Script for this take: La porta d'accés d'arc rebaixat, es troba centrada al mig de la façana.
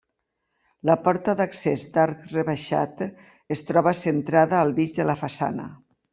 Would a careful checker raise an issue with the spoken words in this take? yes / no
no